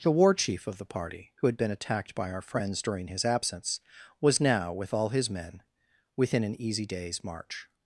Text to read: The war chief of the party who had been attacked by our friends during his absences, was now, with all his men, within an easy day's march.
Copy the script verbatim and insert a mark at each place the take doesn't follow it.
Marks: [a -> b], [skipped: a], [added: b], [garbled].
The war chief of the party who had been attacked by our friends during his [absences, -> absence] was now, with all his men, within an easy day's march.